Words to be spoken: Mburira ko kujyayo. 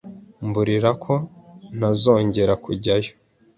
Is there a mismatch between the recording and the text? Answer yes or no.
yes